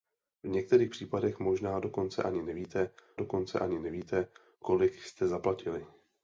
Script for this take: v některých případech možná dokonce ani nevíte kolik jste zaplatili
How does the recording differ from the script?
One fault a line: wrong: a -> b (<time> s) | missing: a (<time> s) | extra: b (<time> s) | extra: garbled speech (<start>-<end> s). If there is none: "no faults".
extra: dokonce ani nevíte (3.1 s)